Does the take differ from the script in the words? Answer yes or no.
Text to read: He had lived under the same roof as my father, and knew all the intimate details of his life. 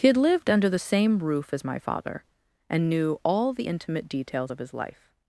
no